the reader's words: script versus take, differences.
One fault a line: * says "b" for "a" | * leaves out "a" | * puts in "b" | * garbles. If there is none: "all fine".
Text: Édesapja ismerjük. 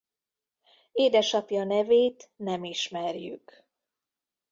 * puts in "nevét nem"